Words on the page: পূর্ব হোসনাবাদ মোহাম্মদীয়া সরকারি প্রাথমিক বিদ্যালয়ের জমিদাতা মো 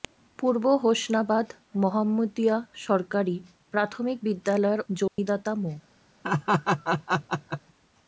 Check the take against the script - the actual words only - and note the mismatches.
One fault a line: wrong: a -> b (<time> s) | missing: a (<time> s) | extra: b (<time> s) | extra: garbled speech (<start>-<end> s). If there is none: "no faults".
no faults